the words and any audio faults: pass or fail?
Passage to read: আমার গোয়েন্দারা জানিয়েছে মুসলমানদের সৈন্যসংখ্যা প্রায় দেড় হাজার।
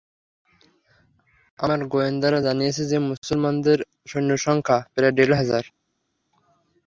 fail